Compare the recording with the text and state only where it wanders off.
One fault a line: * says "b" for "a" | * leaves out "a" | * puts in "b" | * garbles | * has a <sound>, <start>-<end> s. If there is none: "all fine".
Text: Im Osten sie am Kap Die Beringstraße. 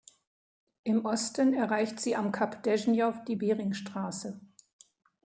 * puts in "erreicht"
* puts in "Deschnjow"